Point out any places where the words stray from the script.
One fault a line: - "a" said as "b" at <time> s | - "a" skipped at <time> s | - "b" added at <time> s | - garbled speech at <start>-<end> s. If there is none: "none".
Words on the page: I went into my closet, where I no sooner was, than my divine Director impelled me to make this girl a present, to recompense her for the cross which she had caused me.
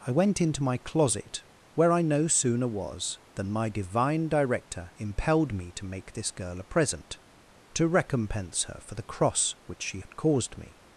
none